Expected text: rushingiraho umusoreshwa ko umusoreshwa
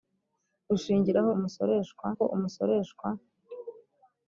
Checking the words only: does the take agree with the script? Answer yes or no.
yes